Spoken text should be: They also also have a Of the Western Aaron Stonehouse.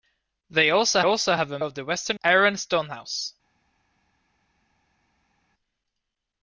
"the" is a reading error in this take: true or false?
false